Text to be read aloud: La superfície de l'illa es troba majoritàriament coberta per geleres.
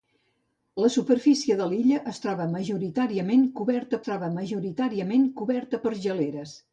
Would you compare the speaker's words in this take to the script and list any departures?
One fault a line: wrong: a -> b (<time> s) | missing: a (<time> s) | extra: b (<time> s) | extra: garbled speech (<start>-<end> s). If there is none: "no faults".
extra: troba majoritàriament coberta (4.1 s)